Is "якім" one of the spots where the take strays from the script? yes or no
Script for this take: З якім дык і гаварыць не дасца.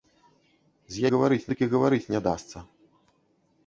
yes